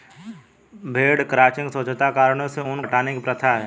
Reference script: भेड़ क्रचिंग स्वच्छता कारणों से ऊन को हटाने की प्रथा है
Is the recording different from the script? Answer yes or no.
yes